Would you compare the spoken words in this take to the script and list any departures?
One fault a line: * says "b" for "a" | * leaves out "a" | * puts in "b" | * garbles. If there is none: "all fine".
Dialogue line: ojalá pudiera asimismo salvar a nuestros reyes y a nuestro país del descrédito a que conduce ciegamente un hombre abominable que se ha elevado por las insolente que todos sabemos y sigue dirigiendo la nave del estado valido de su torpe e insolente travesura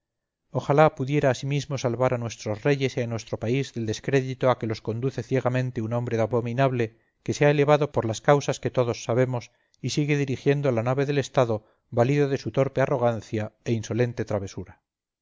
* puts in "los"
* says "causas" for "insolente"
* puts in "arrogancia"